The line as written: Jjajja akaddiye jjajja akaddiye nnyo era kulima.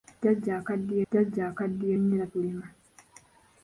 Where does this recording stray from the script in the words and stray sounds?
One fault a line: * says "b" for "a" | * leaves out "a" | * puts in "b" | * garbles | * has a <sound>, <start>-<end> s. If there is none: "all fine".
all fine